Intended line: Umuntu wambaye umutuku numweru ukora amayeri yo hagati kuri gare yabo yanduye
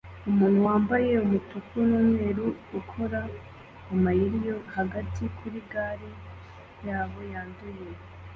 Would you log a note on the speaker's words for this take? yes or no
no